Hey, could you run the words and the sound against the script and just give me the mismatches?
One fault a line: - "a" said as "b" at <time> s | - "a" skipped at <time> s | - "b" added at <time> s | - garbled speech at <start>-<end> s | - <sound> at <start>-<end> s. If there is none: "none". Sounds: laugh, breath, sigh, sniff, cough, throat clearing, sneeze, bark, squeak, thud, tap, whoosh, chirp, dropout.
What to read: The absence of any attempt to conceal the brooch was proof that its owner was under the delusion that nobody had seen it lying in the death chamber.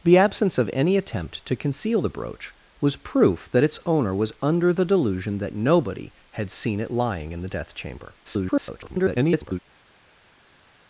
- garbled speech at 8.2-9.6 s